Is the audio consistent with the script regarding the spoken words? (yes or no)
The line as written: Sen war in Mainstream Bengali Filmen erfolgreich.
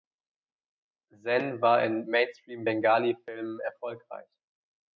yes